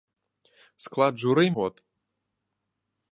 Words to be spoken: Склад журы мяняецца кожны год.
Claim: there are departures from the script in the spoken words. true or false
true